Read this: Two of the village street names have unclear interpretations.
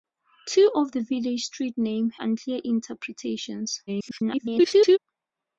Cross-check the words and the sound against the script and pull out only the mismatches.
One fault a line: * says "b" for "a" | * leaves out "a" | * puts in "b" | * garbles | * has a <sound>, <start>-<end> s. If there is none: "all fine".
* leaves out "have"
* garbles